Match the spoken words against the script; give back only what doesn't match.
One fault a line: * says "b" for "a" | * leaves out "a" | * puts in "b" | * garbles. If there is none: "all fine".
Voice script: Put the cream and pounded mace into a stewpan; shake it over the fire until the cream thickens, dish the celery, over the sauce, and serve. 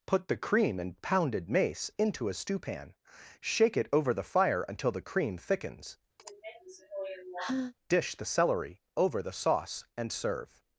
all fine